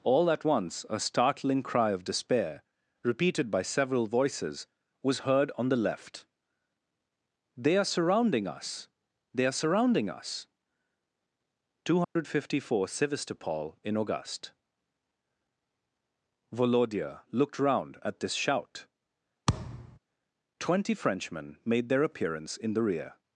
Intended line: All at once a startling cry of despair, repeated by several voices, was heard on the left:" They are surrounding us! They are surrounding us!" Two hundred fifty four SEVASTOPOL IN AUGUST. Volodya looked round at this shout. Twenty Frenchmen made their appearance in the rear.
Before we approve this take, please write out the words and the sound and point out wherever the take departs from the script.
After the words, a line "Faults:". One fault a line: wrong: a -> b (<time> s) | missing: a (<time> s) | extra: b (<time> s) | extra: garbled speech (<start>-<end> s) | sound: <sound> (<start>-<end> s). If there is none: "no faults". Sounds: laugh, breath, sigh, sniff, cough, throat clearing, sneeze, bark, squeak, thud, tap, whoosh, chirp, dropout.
All at once a startling cry of despair, repeated by several voices, was heard on the left:" They are surrounding us! They are surrounding us!" Two hundred fifty four SEVASTOPOL IN AUGUST. Volodya looked round at this shout. Twenty Frenchmen made their appearance in the rear.
Faults:
sound: dropout (12.0-12.2 s)
sound: thud (19.5-20.0 s)